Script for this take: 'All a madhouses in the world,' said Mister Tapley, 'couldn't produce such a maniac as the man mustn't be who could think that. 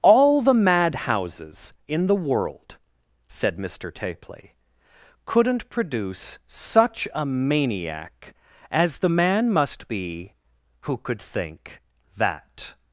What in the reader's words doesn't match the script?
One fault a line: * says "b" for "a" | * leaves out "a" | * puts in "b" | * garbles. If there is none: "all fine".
* says "the" for "a"
* says "must" for "mustn't"